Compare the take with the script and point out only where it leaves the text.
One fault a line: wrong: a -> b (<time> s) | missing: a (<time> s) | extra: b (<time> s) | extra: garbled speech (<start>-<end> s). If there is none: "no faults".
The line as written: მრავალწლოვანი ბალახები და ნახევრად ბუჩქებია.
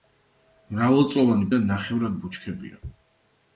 missing: ბალახები (1.5 s)